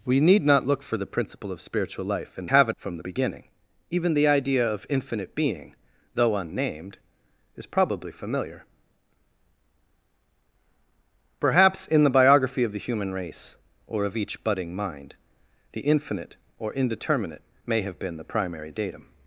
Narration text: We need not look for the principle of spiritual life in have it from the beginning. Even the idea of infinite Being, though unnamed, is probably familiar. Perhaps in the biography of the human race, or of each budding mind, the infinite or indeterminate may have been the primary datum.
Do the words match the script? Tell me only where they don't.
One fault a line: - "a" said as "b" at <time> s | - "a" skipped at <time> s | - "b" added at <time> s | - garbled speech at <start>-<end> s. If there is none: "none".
none